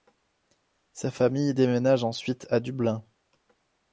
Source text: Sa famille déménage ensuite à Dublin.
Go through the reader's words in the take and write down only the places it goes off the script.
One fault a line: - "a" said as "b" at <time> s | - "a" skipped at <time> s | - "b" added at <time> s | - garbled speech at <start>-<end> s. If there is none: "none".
none